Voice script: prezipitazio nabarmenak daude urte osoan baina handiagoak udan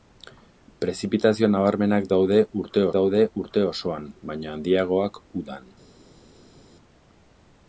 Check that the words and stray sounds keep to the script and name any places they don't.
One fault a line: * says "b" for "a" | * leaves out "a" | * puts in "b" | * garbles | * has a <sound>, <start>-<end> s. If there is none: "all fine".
* puts in "daude urte"